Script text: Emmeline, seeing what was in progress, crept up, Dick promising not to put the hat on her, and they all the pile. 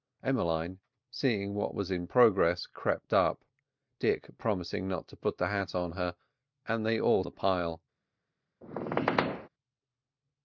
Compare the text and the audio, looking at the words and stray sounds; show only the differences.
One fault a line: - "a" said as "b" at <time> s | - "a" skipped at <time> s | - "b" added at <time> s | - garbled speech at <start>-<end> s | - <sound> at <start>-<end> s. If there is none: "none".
- squeak at 8.6-9.5 s